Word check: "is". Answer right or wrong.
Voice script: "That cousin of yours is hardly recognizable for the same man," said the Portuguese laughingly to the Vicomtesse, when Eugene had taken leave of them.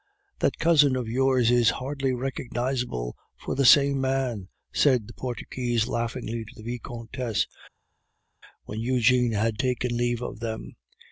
right